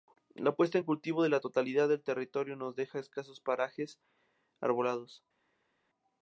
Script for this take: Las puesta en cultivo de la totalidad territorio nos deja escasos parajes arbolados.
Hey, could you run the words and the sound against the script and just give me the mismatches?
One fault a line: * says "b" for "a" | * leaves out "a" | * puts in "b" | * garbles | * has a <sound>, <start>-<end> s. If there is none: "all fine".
* says "La" for "Las"
* puts in "del"